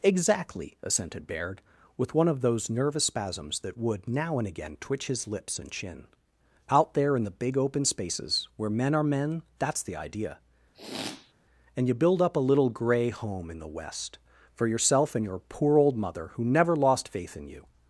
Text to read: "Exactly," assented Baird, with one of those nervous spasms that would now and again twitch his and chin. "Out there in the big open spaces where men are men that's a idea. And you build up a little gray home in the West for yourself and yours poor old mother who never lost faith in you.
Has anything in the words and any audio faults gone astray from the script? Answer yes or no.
yes